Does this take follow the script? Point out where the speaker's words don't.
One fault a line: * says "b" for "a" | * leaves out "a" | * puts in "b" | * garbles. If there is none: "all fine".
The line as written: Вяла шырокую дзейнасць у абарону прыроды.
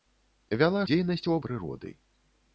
* leaves out "шырокую"
* leaves out "абарону"